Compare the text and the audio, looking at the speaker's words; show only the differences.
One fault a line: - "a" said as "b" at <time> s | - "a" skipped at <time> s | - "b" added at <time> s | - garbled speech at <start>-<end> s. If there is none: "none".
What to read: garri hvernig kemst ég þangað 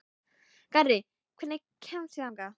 none